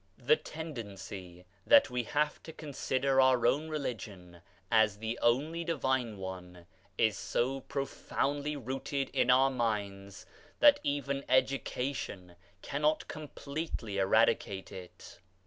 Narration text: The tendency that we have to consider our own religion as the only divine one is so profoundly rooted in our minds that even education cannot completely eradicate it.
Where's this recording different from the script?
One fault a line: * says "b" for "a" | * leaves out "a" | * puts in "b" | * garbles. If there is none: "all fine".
all fine